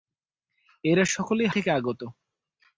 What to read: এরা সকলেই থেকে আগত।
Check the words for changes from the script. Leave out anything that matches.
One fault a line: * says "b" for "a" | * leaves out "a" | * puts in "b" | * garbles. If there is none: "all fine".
all fine